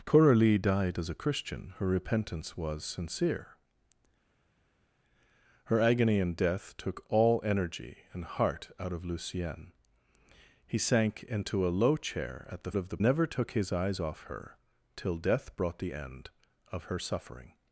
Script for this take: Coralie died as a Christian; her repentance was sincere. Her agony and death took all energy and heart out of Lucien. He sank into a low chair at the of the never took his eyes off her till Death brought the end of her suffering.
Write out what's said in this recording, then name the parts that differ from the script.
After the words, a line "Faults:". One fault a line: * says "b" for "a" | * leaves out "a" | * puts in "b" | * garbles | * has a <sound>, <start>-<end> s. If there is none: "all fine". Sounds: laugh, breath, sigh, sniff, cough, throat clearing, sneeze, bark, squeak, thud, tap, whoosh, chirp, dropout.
Coralie died as a Christian; her repentance was sincere. Her agony and death took all energy and heart out of Lucien. He sank into a low chair at the of the never took his eyes off her till Death brought the end of her suffering.
Faults:
all fine